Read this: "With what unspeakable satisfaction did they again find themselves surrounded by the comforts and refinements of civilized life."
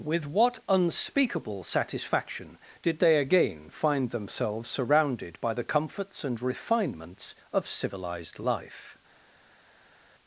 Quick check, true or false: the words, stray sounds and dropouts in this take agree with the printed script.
true